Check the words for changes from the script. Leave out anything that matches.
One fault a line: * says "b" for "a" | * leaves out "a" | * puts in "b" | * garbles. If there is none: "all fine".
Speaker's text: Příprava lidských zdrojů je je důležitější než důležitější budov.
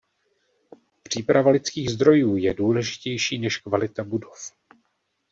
* leaves out "je"
* says "kvalita" for "důležitější"